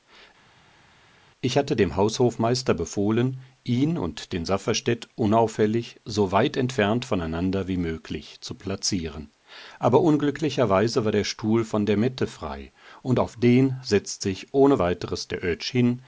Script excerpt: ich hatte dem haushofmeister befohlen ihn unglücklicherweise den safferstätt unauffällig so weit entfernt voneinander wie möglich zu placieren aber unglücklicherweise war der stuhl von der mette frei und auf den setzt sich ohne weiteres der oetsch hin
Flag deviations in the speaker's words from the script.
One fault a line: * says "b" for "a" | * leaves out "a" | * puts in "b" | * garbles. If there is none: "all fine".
* says "und" for "unglücklicherweise"